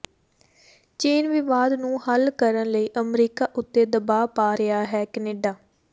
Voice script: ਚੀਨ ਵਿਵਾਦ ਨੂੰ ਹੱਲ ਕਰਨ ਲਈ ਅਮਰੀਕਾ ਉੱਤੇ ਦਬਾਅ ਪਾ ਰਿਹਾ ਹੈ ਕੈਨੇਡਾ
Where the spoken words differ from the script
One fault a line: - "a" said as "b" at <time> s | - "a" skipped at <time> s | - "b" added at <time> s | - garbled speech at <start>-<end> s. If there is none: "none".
none